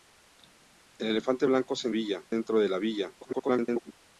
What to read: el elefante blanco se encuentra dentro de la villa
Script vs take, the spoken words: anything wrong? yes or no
yes